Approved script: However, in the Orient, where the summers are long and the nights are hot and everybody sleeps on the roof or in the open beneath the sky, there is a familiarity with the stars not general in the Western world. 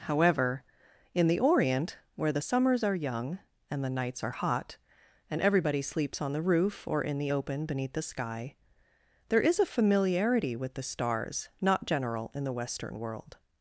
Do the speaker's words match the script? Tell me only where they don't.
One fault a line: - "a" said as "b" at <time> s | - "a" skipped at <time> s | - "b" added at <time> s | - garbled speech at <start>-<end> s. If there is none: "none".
- "long" said as "young" at 2.9 s